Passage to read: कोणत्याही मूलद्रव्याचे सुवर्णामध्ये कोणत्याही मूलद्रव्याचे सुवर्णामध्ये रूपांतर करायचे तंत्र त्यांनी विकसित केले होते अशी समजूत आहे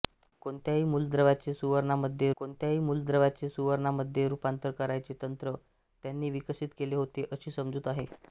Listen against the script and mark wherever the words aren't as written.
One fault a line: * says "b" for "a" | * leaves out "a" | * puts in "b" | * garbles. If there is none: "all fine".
all fine